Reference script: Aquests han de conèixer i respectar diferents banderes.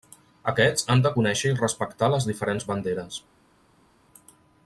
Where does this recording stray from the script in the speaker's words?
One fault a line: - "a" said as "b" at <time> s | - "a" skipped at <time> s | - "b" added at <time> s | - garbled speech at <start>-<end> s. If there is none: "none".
- "les" added at 2.1 s